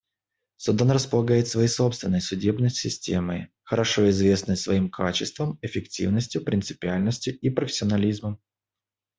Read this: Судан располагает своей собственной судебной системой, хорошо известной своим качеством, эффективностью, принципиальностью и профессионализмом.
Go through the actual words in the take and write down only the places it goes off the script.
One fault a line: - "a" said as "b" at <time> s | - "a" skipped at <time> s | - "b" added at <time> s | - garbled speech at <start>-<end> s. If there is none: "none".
none